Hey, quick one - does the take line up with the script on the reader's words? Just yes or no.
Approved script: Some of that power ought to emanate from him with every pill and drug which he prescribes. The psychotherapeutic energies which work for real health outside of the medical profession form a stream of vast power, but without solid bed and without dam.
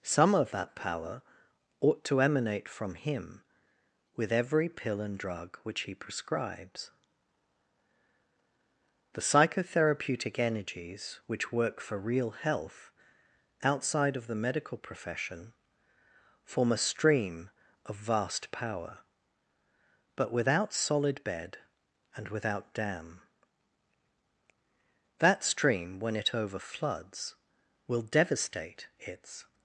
no